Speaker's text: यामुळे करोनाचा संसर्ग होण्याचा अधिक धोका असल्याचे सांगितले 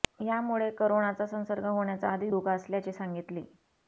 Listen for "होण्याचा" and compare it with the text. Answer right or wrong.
right